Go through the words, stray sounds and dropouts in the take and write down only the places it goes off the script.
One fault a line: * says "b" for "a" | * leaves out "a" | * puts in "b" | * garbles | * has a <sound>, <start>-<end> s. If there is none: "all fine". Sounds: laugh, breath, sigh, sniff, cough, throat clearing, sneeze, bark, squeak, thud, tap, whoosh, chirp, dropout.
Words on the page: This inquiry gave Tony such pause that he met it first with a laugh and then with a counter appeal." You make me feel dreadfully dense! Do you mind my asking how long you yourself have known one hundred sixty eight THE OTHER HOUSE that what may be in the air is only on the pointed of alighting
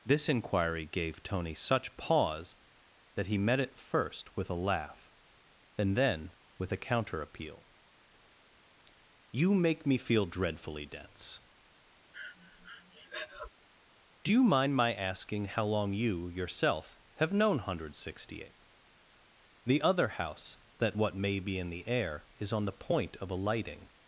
* has a breath, 12.1-13.5 s
* leaves out "only"
* says "point" for "pointed"